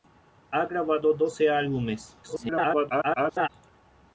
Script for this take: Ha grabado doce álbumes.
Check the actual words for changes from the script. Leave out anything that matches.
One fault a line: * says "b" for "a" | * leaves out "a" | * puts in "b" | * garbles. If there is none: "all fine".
* garbles